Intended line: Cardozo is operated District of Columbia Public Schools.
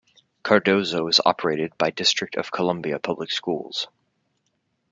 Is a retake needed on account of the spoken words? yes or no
yes